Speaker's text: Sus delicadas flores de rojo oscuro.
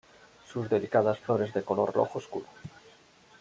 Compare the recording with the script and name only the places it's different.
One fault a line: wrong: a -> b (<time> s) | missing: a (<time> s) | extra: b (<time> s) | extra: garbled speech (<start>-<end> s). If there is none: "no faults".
extra: color (1.6 s)